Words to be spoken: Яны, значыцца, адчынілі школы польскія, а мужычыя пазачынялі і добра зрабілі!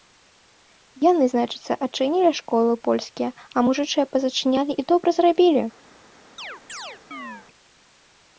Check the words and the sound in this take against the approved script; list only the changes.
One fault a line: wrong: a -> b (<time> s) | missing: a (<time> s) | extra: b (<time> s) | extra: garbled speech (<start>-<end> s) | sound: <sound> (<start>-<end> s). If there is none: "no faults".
sound: chirp (6.4-7.5 s)